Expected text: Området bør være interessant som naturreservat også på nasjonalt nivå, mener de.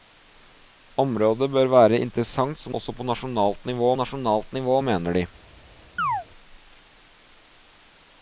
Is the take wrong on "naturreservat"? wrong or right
wrong